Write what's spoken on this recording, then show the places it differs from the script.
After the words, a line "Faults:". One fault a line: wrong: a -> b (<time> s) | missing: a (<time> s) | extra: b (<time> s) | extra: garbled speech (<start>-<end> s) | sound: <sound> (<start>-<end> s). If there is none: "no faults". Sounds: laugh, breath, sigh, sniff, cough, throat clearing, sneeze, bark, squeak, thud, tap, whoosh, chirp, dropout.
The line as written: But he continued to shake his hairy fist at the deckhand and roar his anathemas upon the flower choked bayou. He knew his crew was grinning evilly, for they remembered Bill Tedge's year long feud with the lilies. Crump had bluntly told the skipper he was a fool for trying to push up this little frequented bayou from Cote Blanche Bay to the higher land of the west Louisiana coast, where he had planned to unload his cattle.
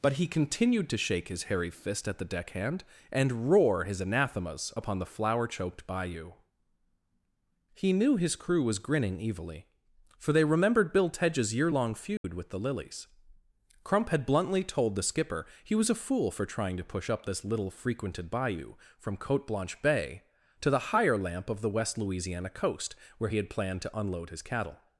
But he continued to shake his hairy fist at the deckhand and roar his anathemas upon the flower choked bayou. He knew his crew was grinning evilly, for they remembered Bill Tedge's year long feud with the lilies. Crump had bluntly told the skipper he was a fool for trying to push up this little frequented bayou from Cote Blanche Bay to the higher lamp of the west Louisiana coast, where he had planned to unload his cattle.
Faults:
sound: dropout (12.2-12.2 s)
wrong: land -> lamp (21.2 s)